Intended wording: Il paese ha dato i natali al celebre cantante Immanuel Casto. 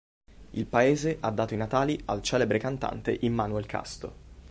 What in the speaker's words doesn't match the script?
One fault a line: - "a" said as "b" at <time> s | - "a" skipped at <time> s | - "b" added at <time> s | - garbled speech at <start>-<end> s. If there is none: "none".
none